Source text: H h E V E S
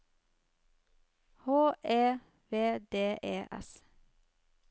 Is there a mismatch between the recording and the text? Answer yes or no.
yes